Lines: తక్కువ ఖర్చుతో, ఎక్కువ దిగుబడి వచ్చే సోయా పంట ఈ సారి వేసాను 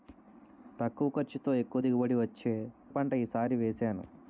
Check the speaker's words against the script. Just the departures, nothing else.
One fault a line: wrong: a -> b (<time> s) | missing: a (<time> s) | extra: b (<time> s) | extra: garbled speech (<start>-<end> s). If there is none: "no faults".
missing: సోయా (2.5 s)